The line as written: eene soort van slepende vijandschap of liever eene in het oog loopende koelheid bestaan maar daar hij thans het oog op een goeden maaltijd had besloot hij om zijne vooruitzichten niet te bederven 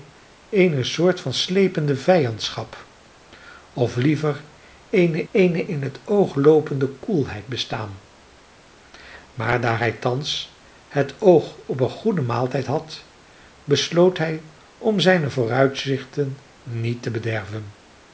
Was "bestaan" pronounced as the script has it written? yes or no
yes